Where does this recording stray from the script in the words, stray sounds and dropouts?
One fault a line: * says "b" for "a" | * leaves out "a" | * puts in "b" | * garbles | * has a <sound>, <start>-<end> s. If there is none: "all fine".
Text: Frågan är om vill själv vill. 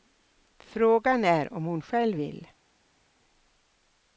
* says "hon" for "vill"